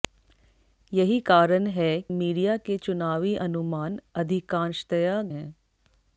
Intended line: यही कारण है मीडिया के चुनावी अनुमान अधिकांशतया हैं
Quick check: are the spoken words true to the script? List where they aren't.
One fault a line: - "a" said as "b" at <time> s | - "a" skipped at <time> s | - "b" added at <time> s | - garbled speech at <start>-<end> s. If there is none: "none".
none